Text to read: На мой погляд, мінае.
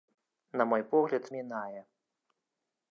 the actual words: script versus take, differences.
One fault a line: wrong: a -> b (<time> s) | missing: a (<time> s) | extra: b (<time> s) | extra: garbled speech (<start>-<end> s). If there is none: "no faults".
no faults